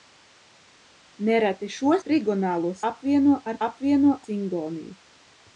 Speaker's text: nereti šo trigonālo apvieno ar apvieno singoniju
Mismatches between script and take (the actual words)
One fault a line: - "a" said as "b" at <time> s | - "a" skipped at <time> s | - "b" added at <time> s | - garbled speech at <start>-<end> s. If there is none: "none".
none